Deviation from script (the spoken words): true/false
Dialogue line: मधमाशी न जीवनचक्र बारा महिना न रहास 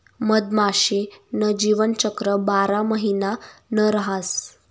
false